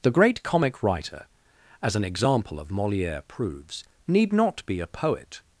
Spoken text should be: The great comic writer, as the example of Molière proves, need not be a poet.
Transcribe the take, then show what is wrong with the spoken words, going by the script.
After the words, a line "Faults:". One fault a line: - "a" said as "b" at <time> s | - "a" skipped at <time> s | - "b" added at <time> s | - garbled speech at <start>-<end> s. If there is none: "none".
The great comic writer, as an example of Molière proves, need not be a poet.
Faults:
- "the" said as "an" at 1.9 s